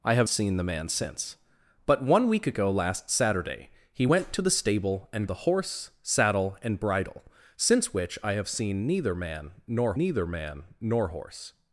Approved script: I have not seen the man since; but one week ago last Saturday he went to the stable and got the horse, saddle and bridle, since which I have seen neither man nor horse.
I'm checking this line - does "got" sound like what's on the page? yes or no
no